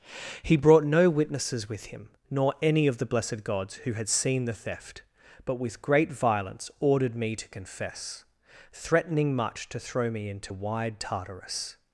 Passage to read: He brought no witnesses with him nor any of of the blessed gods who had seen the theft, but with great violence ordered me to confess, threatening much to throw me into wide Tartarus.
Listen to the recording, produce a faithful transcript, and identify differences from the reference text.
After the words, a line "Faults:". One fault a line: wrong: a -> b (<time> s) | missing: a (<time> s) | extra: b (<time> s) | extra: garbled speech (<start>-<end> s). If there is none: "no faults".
He brought no witnesses with him nor any of the blessed gods who had seen the theft, but with great violence ordered me to confess, threatening much to throw me into wide Tartarus.
Faults:
missing: of (3.0 s)